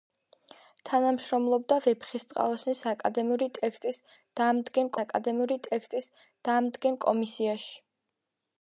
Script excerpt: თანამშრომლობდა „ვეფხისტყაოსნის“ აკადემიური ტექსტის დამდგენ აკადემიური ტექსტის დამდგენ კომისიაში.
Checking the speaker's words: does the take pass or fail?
pass